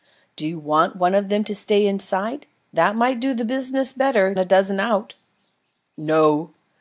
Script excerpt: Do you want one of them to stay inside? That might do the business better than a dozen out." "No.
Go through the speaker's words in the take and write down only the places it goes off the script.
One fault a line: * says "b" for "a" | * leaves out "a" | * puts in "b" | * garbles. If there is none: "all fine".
* leaves out "than"